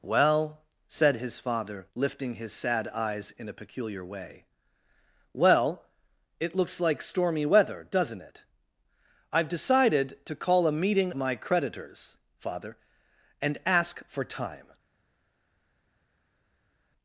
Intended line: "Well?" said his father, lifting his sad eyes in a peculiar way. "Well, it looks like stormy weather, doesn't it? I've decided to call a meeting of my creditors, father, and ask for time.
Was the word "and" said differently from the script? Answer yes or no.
no